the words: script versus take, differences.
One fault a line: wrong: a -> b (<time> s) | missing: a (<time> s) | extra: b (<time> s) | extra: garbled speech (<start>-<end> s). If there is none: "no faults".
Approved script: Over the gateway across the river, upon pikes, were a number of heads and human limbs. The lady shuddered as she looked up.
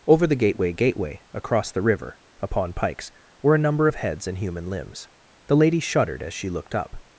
extra: gateway (0.7 s)